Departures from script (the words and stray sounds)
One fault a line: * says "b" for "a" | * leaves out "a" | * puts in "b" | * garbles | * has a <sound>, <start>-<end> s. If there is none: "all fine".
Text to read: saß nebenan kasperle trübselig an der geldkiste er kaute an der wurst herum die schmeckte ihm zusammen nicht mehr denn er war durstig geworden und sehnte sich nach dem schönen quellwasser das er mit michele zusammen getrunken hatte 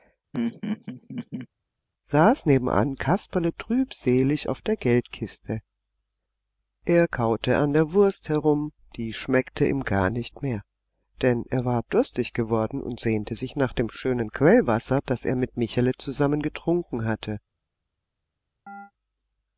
* has a laugh, 0.3-1.5 s
* says "auf" for "an"
* says "gar" for "zusammen"
* has a chirp, 18.7-18.9 s